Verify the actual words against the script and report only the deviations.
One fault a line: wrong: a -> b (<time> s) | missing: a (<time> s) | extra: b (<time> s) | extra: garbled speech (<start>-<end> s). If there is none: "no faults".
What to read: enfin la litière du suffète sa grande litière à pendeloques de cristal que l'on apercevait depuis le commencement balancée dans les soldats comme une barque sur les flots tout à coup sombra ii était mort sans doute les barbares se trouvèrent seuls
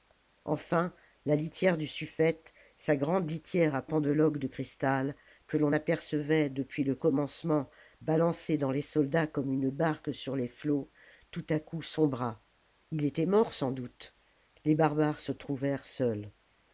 no faults